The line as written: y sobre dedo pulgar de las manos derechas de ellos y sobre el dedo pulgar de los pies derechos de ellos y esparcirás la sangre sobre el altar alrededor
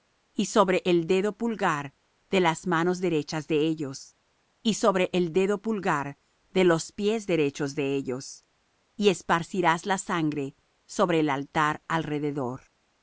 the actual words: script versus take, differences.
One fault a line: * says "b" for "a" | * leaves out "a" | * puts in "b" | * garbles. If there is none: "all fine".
* puts in "el"